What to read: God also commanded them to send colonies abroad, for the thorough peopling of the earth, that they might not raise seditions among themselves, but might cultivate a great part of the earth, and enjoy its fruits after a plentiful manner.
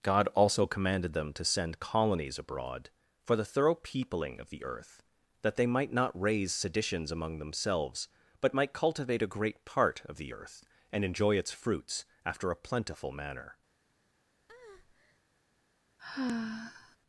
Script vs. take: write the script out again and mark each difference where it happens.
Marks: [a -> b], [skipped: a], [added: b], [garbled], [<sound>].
God also commanded them to send colonies abroad, for the thorough peopling of the earth, that they might not raise seditions among themselves, but might cultivate a great part of the earth, and enjoy its fruits after a plentiful manner. [breath] [sigh]